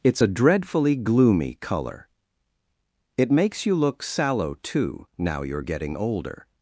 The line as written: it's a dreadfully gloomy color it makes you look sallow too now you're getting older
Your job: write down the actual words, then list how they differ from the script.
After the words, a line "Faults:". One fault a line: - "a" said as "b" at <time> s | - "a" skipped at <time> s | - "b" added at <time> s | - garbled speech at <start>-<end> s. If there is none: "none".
it's a dreadfully gloomy color it makes you look sallow too now you're getting older
Faults:
none